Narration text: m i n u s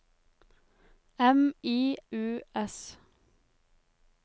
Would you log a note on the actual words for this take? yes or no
yes